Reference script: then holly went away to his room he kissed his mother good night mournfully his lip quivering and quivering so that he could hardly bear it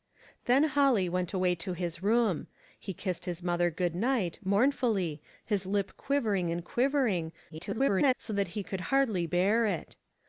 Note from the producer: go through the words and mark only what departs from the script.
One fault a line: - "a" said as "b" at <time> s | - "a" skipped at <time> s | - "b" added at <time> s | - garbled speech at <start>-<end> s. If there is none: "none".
- garbled speech at 7.5-8.1 s